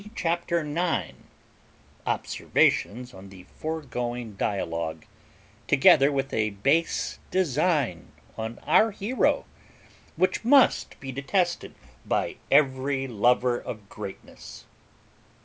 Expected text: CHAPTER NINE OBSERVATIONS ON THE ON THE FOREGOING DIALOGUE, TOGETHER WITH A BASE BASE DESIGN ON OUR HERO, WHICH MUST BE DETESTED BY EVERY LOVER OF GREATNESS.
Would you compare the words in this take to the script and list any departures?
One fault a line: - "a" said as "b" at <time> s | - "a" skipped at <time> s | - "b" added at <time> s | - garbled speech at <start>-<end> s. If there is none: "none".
- "ON THE" skipped at 3.4 s
- "BASE" skipped at 7.2 s